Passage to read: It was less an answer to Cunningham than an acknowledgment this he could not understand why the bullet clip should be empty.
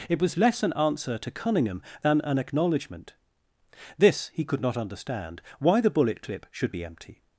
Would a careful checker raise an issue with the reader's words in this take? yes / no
no